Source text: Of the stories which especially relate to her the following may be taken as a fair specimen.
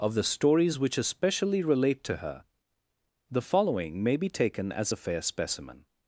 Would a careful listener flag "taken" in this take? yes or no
no